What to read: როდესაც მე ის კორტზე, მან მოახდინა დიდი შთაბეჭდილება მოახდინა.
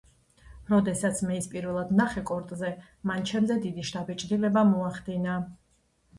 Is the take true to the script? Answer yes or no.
no